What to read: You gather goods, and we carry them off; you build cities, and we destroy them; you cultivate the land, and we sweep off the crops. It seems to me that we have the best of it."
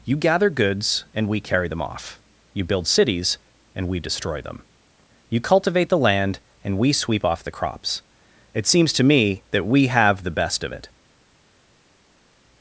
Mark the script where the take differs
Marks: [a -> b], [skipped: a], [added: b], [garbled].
You gather goods, and we carry them off; you build cities, and we destroy them; you cultivate the land, and we sweep off the crops. It seems to me that we have the best of it."